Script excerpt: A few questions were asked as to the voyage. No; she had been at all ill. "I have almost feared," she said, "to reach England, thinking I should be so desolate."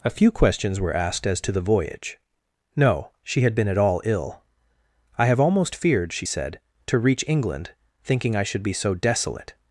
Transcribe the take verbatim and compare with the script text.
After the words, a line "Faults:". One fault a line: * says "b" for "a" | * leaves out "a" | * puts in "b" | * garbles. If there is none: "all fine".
A few questions were asked as to the voyage. No; she had been at all ill. "I have almost feared," she said, "to reach England, thinking I should be so desolate."
Faults:
all fine